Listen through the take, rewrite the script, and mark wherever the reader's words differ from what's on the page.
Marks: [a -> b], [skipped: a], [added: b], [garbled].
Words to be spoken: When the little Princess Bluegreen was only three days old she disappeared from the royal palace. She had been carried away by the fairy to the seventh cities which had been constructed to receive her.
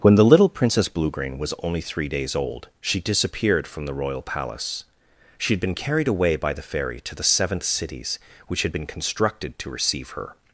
When the little Princess Bluegreen was only three days old she disappeared from the royal palace. She had been carried away by the fairy to the seventh cities which had been constructed to receive her.